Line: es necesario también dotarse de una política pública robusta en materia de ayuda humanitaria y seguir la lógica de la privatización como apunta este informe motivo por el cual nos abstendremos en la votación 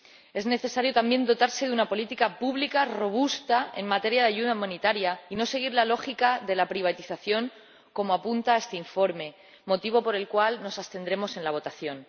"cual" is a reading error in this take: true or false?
false